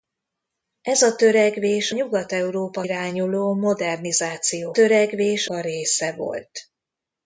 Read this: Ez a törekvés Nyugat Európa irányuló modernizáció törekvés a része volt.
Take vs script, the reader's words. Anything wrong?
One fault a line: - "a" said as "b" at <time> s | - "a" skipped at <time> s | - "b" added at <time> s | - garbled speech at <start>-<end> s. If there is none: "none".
none